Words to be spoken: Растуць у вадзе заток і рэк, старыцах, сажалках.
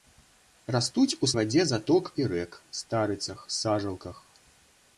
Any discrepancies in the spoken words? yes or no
no